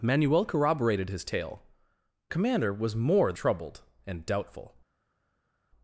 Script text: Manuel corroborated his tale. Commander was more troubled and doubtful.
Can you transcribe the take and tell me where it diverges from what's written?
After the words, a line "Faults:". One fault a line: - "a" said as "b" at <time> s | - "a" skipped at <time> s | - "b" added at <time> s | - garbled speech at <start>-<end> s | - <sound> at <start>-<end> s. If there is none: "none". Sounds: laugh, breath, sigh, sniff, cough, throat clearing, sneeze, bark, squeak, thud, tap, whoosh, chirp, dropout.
Manuel corroborated his tale. Commander was more troubled and doubtful.
Faults:
none